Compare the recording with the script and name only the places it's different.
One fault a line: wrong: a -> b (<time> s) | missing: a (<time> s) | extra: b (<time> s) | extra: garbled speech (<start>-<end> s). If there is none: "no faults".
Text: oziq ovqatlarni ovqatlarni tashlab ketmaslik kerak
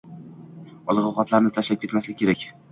missing: ovqatlarni (1.5 s)